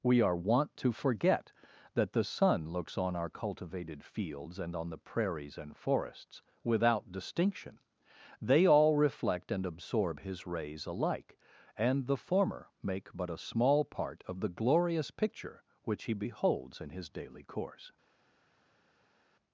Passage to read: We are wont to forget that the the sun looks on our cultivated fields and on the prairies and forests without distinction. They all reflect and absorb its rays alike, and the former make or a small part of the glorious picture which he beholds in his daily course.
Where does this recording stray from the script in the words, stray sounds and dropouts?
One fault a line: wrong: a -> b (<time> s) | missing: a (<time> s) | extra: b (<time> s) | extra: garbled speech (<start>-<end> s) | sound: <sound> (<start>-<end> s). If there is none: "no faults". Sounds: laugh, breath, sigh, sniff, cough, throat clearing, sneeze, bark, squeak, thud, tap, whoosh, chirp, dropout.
missing: the (2.2 s)
wrong: its -> his (10.2 s)
wrong: or -> but (13.1 s)